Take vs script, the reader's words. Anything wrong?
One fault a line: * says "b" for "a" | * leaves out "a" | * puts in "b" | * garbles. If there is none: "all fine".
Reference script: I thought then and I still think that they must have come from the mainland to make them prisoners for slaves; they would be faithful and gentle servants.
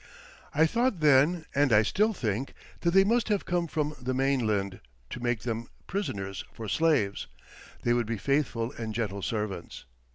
all fine